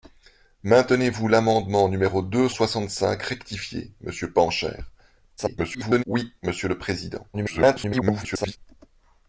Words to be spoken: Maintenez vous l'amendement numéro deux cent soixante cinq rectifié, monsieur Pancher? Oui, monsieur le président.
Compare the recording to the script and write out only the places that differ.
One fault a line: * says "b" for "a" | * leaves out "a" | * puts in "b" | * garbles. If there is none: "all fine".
* leaves out "cent"
* garbles
* garbles